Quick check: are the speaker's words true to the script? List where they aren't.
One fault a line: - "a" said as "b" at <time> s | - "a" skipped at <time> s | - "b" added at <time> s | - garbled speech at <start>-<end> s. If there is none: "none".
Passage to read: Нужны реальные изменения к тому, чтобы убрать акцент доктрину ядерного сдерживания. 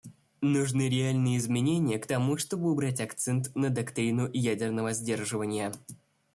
- "на" added at 3.6 s